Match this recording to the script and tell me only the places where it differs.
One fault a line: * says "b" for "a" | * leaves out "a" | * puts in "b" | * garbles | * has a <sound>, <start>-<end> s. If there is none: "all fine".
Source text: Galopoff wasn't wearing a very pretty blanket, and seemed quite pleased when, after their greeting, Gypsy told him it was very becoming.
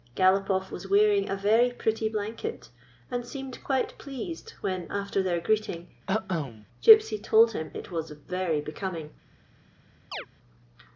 * says "was" for "wasn't"
* has a cough, 6.1-6.7 s
* has a chirp, 10.1-10.3 s